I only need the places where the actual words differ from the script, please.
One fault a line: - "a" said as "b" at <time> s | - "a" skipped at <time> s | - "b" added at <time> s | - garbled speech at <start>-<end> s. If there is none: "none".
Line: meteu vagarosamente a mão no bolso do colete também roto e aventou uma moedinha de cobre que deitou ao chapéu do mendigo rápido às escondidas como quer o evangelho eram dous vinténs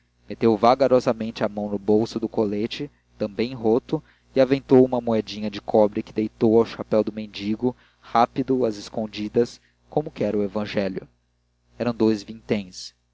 none